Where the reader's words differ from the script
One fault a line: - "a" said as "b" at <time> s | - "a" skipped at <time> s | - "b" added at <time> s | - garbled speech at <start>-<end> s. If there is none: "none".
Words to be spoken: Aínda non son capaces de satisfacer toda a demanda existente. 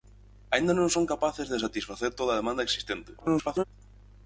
- garbled speech at 3.2-3.6 s